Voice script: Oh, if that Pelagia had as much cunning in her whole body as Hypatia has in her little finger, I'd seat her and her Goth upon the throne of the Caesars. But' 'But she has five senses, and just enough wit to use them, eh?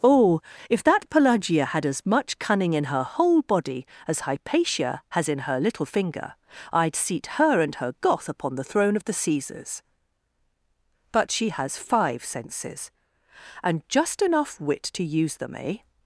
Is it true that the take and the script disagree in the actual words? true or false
true